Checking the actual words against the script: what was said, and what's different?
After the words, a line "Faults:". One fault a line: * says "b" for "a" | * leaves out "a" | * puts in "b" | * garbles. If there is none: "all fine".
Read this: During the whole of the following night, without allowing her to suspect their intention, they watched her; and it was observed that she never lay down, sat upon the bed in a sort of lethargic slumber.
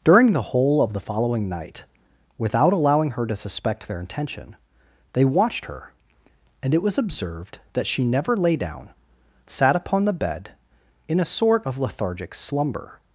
During the whole of the following night, without allowing her to suspect their intention, they watched her; and it was observed that she never lay down, sat upon the bed in a sort of lethargic slumber.
Faults:
all fine